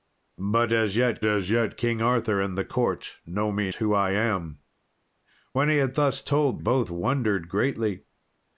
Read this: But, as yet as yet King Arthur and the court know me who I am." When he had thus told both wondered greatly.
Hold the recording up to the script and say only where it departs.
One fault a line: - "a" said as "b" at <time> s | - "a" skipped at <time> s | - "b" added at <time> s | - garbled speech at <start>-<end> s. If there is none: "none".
none